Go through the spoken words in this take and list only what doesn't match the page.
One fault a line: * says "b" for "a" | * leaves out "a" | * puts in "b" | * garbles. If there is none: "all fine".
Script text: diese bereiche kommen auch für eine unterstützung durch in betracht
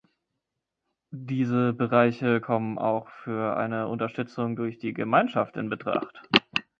* puts in "die gemeinschaft"